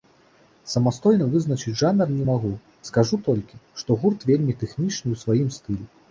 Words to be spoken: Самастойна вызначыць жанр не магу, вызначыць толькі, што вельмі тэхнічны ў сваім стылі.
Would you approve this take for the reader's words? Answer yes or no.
no